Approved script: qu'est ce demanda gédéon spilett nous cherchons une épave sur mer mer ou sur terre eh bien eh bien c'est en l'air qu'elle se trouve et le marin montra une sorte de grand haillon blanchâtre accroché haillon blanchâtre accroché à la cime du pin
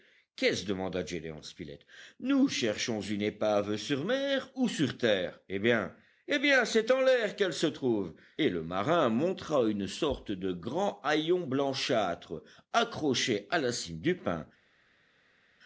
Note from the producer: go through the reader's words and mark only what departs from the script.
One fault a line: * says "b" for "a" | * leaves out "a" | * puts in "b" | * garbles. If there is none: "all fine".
* leaves out "mer"
* leaves out "haillon blanchâtre accroché"